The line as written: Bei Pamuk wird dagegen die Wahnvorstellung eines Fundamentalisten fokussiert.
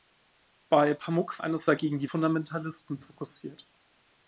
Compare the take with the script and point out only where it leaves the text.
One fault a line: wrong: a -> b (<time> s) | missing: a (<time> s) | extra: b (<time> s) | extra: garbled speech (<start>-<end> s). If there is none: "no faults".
wrong: wird -> eines (1.4 s)
missing: Wahnvorstellung eines (2.1 s)